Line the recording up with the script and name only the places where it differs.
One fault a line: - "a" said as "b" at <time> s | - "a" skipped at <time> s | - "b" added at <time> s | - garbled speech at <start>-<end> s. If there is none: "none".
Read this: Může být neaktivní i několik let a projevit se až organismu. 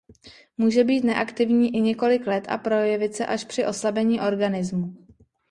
- "při oslabení" added at 3.4 s